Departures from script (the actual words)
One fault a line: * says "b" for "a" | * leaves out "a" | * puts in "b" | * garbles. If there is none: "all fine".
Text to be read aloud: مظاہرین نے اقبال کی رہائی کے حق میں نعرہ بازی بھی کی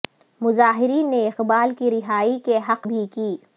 * leaves out "میں نعرہ بازی"